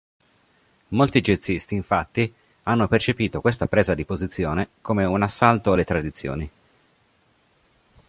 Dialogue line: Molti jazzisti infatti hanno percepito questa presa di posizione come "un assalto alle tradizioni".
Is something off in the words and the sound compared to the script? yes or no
no